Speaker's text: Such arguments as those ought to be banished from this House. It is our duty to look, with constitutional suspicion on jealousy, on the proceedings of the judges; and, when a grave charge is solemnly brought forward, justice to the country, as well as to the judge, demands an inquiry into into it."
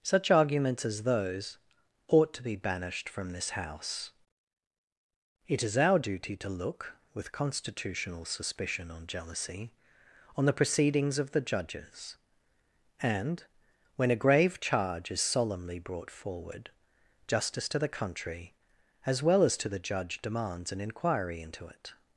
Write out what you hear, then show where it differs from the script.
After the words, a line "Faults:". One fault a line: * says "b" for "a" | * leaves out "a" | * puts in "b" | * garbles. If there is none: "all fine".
Such arguments as those ought to be banished from this House. It is our duty to look, with constitutional suspicion on jealousy, on the proceedings of the judges; and, when a grave charge is solemnly brought forward, justice to the country, as well as to the judge, demands an inquiry into it."
Faults:
* leaves out "into"